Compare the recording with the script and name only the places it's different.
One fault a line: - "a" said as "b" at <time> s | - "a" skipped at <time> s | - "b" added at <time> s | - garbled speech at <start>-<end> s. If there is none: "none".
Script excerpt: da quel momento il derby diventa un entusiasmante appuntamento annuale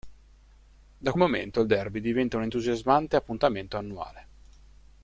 - "quel" skipped at 1.1 s